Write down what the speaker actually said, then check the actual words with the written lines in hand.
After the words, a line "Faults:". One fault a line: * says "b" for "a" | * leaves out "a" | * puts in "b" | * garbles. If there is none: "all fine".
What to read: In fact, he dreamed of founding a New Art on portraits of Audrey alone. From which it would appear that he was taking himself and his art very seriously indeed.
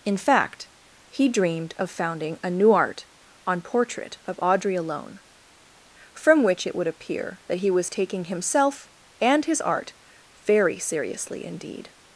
In fact, he dreamed of founding a New Art on portrait of Audrey alone. From which it would appear that he was taking himself and his art very seriously indeed.
Faults:
* says "portrait" for "portraits"